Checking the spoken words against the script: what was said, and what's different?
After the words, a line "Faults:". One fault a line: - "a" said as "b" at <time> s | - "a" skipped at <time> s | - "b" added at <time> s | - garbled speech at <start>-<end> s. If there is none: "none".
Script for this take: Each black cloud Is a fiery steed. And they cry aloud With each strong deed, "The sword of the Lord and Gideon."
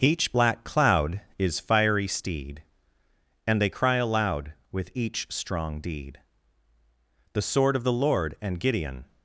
Each black cloud Is fiery steed. And they cry aloud With each strong deed, "The sword of the Lord and Gideon."
Faults:
- "a" skipped at 1.6 s